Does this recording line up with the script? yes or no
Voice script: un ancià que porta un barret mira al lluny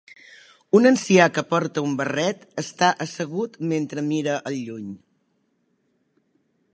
no